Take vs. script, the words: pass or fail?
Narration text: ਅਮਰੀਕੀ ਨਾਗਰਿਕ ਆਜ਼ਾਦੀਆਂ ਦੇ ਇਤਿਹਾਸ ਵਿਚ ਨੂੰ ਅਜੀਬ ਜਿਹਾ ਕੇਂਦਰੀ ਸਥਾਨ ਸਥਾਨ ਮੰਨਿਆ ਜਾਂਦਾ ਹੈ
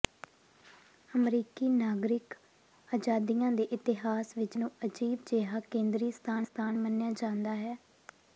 pass